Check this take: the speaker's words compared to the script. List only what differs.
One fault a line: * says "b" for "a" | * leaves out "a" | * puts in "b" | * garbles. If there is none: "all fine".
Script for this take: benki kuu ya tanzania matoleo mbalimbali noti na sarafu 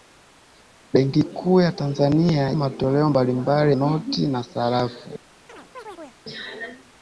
all fine